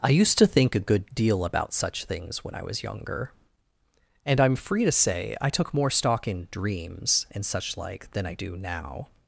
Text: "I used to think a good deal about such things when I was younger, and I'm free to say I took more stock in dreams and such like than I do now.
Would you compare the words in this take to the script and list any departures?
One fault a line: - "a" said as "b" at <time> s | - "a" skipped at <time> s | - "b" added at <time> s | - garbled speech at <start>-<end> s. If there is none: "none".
none